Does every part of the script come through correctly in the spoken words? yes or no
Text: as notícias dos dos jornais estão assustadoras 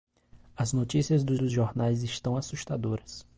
yes